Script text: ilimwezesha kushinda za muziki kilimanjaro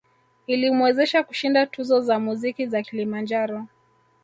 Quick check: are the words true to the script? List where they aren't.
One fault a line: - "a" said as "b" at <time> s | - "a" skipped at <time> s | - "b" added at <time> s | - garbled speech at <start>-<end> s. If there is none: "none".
- "tuzo" added at 1.6 s
- "za" added at 2.7 s